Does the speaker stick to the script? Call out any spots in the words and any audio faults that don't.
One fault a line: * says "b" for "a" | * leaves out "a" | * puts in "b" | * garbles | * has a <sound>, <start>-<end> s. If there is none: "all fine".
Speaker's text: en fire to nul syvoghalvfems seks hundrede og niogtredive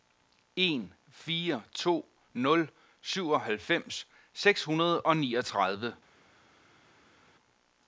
all fine